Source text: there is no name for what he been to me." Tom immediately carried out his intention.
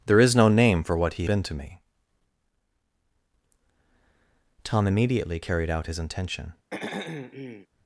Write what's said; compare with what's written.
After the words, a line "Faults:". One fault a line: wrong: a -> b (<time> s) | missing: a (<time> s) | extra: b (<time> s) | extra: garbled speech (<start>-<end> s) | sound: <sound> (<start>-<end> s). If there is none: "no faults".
there is no name for what he been to me." Tom immediately carried out his intention.
Faults:
sound: throat clearing (6.7-7.7 s)